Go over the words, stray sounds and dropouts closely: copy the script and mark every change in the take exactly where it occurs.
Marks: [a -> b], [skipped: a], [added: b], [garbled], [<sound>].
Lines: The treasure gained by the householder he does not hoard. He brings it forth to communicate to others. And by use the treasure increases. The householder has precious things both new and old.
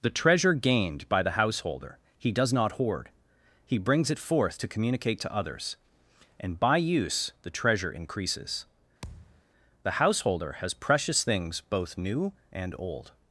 The treasure gained by the householder he does not hoard. He brings it forth to communicate to others. And by use the treasure increases. [thud] The householder has precious things both new and old.